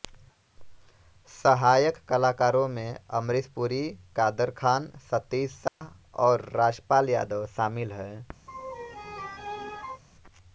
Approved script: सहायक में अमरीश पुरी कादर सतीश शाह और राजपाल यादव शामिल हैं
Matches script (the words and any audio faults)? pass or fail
fail